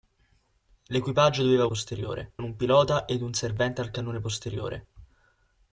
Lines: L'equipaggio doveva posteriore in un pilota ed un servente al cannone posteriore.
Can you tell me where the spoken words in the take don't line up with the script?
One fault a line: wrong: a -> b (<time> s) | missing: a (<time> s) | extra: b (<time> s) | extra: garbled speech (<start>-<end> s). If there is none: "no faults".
no faults